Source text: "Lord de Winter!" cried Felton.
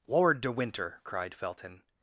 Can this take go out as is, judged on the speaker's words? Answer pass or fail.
pass